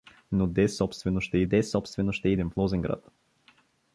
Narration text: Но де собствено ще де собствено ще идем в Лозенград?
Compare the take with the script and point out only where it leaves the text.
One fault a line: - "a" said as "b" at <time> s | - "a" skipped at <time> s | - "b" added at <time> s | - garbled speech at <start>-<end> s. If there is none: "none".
none